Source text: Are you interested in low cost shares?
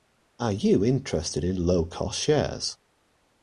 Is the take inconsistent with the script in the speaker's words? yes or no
no